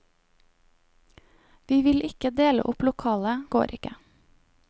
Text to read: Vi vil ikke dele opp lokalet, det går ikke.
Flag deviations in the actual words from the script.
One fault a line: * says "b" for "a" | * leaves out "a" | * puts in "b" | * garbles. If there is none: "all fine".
* leaves out "det"